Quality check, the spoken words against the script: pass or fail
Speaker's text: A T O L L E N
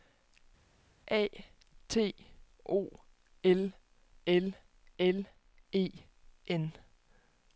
fail